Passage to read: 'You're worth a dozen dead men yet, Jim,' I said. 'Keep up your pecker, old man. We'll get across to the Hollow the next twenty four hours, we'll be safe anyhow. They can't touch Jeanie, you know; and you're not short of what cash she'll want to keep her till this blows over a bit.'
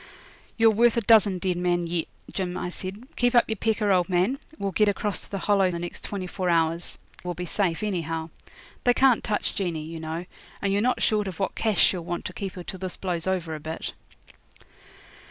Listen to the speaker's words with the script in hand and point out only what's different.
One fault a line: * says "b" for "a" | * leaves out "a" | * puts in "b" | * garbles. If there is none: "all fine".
all fine